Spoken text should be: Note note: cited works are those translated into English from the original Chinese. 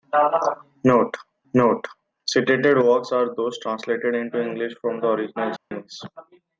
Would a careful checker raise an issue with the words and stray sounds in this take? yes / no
yes